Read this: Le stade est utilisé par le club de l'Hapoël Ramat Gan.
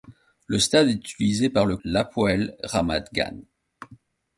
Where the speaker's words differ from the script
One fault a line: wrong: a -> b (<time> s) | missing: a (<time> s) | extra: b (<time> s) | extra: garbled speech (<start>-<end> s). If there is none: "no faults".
missing: club de (1.8 s)